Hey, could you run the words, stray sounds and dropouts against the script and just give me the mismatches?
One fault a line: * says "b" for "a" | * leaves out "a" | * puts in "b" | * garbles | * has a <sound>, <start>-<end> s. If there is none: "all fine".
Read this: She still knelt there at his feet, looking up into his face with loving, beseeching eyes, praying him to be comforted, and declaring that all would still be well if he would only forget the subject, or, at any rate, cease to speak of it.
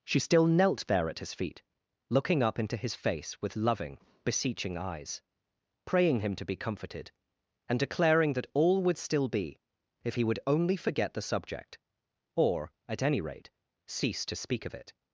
* leaves out "well"